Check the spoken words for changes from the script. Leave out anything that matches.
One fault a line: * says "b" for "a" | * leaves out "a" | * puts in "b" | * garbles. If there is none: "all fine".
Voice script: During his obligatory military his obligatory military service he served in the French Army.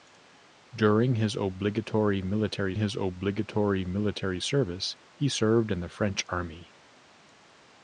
all fine